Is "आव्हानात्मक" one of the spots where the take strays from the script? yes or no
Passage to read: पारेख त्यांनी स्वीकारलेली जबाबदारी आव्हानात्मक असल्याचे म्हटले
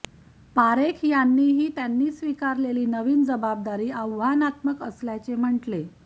no